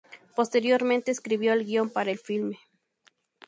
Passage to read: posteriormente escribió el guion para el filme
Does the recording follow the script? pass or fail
pass